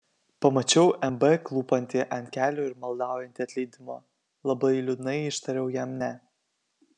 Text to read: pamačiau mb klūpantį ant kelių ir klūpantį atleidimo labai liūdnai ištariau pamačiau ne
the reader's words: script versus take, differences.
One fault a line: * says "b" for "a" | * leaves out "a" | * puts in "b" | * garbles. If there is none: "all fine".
* says "maldaujantį" for "klūpantį"
* says "jam" for "pamačiau"